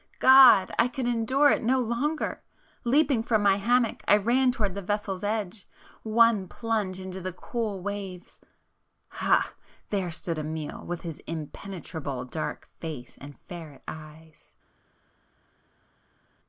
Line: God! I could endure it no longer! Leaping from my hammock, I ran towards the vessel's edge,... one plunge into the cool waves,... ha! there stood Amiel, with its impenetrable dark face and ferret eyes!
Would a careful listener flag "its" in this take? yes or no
yes